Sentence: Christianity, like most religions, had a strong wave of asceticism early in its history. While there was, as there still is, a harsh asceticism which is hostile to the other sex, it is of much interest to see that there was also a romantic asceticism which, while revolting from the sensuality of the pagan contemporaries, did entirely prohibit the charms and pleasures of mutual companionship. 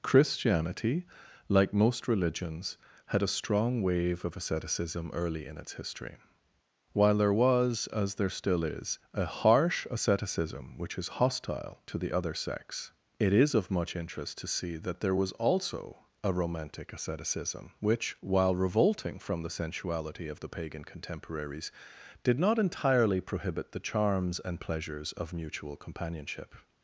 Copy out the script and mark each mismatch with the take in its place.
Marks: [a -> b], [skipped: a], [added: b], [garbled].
Christianity, like most religions, had a strong wave of asceticism early in its history. While there was, as there still is, a harsh asceticism which is hostile to the other sex, it is of much interest to see that there was also a romantic asceticism which, while revolting from the sensuality of the pagan contemporaries, did [added: not] entirely prohibit the charms and pleasures of mutual companionship.